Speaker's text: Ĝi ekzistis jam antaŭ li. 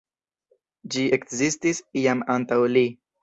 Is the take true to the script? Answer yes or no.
yes